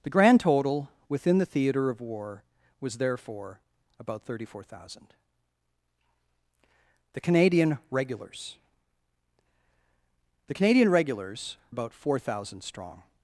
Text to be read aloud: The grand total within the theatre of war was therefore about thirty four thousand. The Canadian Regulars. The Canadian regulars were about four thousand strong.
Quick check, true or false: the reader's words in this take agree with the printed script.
false